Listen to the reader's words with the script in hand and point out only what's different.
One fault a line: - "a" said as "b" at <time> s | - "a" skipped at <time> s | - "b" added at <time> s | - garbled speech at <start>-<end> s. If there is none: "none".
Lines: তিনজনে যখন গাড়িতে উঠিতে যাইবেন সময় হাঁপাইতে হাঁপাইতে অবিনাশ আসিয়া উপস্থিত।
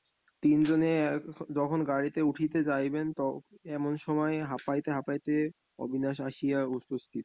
- "এমন" added at 3.8 s